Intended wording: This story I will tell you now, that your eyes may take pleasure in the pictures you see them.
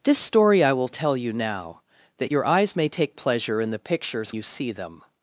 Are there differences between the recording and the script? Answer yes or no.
no